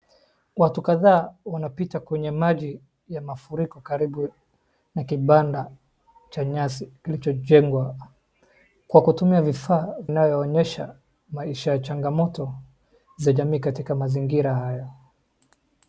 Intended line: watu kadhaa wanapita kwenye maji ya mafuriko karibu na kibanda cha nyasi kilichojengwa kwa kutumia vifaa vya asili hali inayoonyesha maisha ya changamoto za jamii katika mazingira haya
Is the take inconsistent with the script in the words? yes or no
yes